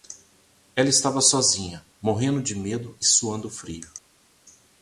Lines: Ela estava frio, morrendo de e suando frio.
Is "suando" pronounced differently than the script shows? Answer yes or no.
no